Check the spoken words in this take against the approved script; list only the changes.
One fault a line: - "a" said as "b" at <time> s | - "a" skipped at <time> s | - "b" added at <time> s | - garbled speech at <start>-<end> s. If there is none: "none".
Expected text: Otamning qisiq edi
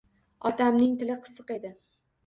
- "tili" added at 1.0 s